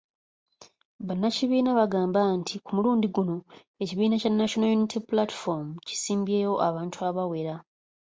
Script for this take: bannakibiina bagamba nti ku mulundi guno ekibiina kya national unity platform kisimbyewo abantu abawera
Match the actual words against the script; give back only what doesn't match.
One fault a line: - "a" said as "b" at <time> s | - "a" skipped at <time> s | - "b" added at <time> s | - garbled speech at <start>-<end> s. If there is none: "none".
none